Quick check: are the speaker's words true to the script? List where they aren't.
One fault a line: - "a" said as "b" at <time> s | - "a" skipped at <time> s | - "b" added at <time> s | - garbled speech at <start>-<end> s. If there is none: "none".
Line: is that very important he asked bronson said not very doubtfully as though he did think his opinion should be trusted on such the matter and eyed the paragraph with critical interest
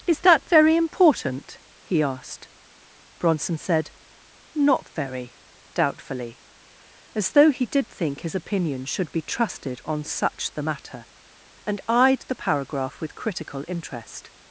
none